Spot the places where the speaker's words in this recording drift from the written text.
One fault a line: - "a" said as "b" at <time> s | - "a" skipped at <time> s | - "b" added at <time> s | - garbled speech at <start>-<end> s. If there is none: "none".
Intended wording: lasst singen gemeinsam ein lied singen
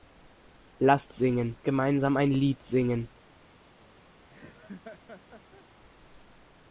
none